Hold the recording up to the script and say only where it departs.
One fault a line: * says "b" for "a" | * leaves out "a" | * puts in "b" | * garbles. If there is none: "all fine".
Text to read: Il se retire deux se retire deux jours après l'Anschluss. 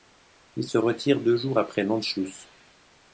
* leaves out "se retire deux"